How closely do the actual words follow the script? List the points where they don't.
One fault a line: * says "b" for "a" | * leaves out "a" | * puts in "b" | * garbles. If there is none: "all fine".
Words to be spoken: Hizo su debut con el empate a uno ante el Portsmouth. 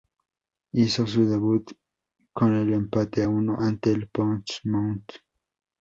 all fine